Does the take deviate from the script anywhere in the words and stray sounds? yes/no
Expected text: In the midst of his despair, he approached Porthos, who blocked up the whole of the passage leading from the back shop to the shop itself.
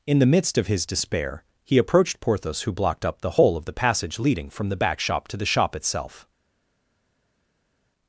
no